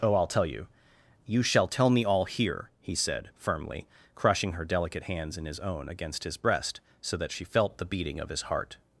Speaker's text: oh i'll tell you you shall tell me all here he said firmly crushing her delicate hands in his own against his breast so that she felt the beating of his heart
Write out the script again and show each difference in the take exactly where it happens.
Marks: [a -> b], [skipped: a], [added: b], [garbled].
oh i'll tell you you shall tell me all here he said firmly crushing her delicate hands in his own against his breast so that she felt the beating of his heart